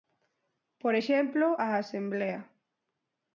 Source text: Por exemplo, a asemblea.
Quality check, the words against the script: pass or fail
pass